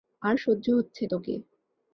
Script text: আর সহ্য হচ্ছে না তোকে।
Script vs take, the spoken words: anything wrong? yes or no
yes